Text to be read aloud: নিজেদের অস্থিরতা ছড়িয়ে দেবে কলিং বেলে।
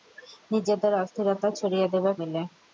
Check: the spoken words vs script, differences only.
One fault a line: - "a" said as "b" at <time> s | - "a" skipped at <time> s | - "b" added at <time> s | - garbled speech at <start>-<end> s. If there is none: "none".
- "কলিং" skipped at 2.1 s